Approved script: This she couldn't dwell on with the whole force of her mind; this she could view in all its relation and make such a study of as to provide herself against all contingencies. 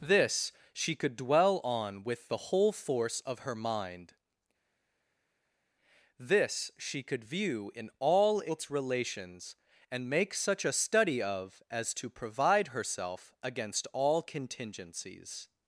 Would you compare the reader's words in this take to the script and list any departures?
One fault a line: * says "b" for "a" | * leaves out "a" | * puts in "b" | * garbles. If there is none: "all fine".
* says "could" for "couldn't"
* says "relations" for "relation"